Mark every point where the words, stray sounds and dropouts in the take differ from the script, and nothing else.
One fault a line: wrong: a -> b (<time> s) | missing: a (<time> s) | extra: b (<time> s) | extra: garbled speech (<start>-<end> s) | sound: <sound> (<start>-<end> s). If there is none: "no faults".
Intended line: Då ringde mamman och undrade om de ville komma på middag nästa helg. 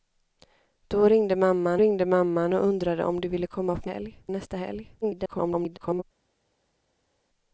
extra: ringde mamman (1.8 s)
wrong: middag -> helg (3.8 s)
extra: garbled speech (5.0-6.0 s)